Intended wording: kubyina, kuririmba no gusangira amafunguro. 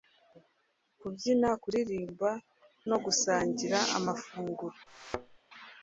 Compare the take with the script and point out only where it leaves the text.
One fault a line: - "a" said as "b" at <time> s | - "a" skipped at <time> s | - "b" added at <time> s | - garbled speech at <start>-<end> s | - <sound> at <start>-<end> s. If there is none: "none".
- thud at 4.9-5.4 s